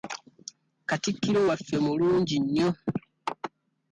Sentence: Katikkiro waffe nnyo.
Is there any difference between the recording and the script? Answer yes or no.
yes